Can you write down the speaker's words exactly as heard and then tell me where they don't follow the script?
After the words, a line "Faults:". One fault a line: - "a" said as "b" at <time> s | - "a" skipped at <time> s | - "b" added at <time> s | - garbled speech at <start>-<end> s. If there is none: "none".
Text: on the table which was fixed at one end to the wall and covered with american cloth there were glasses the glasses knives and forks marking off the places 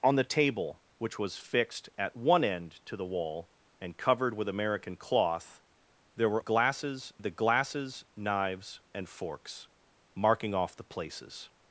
on the table which was fixed at one end to the wall and covered with american cloth there were glasses the glasses knives and forks marking off the places
Faults:
none